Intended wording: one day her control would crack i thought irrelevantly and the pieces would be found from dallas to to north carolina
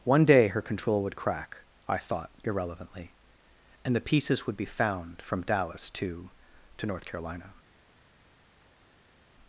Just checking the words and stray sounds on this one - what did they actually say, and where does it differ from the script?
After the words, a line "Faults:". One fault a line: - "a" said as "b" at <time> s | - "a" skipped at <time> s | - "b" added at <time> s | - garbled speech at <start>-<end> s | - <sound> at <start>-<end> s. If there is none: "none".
one day her control would crack i thought irrelevantly and the pieces would be found from dallas to to north carolina
Faults:
none